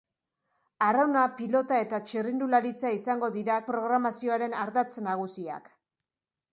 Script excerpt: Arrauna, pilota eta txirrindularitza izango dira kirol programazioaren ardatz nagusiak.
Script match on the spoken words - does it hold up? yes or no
no